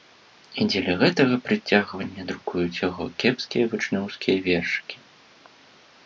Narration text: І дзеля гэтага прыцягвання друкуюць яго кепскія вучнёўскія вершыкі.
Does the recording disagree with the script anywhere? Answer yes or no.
no